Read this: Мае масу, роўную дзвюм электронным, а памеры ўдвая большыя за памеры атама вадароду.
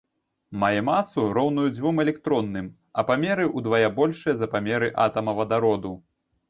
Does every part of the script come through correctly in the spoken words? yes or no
yes